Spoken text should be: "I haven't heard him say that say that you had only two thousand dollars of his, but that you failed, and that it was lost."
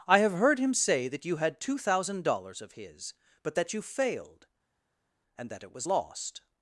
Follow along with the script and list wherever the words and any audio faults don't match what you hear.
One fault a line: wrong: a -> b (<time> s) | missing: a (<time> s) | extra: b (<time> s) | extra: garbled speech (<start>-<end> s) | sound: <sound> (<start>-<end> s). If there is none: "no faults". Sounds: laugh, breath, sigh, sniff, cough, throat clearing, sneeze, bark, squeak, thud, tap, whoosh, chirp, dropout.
wrong: haven't -> have (0.2 s)
missing: say that (1.2 s)
missing: only (1.6 s)